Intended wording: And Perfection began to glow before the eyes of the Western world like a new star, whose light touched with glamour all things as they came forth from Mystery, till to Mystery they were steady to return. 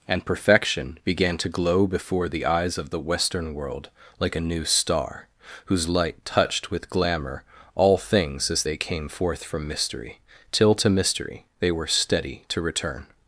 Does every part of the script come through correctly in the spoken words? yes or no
yes